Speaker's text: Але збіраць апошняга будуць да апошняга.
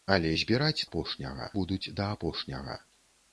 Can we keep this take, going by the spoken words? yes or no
yes